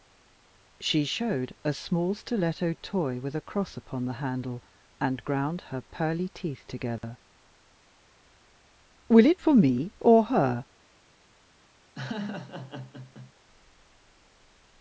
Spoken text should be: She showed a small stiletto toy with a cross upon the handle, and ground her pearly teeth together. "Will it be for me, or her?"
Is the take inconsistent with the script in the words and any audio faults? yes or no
yes